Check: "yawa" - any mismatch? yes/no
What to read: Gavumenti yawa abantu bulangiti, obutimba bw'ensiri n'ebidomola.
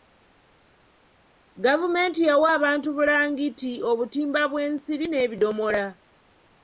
no